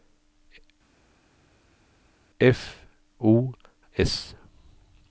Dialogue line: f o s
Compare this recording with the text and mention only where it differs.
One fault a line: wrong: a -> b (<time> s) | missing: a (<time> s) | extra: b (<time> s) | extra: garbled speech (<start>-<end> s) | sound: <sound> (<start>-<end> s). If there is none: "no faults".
no faults